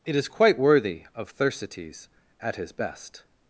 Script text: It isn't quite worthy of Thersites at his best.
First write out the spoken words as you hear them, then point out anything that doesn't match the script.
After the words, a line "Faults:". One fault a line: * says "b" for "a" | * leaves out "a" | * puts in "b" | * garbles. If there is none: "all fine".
It is quite worthy of Thersites at his best.
Faults:
* says "is" for "isn't"